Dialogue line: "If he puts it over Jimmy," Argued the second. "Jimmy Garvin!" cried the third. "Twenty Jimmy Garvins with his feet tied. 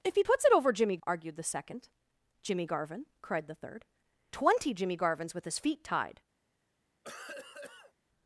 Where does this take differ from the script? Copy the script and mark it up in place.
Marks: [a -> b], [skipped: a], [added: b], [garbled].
"If he puts it over Jimmy," Argued the second. "Jimmy Garvin!" cried the third. "Twenty Jimmy Garvins with his feet tied.